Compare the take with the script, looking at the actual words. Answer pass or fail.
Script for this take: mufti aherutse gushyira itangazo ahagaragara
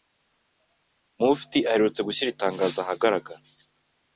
pass